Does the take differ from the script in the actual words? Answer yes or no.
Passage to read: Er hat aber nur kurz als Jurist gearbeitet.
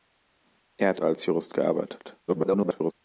yes